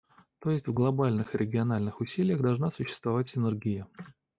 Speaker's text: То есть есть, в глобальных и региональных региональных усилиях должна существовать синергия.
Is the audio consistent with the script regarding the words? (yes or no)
no